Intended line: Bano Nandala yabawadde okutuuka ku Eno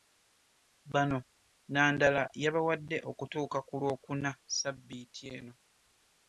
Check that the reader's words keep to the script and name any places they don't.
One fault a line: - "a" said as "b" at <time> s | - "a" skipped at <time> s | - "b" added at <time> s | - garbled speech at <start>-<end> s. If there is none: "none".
- "Lwokuna Ssabbiiti" added at 3.8 s